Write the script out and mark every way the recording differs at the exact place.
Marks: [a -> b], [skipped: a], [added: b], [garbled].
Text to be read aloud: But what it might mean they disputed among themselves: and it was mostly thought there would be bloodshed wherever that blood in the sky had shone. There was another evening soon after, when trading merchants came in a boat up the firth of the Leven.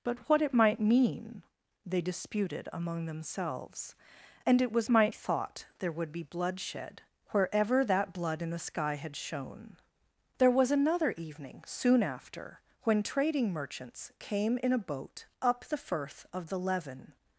But what it might mean they disputed among themselves: and it was [mostly -> might] thought there would be bloodshed wherever that blood in the sky had shone. There was another evening soon after, when trading merchants came in a boat up the firth of the Leven.